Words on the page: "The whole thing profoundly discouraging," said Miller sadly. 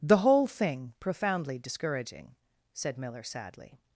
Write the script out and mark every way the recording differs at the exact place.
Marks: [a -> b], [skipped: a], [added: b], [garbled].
"The whole thing profoundly discouraging," said Miller sadly.